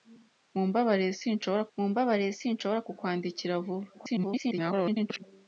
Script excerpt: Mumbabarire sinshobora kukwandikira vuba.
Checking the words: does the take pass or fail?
fail